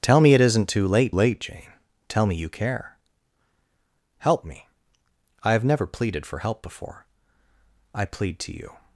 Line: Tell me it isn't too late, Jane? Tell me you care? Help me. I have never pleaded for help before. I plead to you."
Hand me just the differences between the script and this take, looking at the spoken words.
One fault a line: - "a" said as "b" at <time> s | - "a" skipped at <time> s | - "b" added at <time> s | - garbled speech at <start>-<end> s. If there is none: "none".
- "late" added at 1.1 s